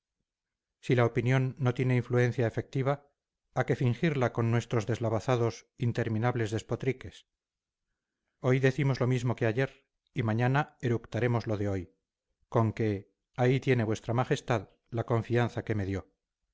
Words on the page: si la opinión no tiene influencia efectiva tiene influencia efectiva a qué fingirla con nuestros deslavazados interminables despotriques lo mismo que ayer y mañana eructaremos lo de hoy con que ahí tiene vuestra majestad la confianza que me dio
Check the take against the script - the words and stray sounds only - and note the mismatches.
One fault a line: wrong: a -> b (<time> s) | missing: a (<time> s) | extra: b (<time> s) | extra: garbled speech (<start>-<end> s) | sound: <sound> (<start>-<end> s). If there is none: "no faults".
missing: tiene influencia efectiva (3.1 s)
extra: hoy decimos (8.4 s)